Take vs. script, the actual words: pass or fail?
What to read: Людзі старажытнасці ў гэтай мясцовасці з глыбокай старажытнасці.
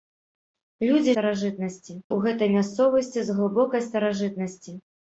pass